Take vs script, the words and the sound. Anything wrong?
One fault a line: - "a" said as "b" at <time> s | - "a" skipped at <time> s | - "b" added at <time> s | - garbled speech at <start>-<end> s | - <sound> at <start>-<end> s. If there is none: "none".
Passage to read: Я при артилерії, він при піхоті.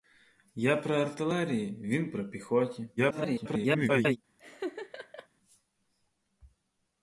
- garbled speech at 3.0-4.2 s
- laugh at 4.4-5.3 s